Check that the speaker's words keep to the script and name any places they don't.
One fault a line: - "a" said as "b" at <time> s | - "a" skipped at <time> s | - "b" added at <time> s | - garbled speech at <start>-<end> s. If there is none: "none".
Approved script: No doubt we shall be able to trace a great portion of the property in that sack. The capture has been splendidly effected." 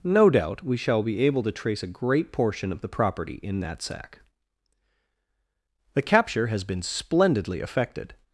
none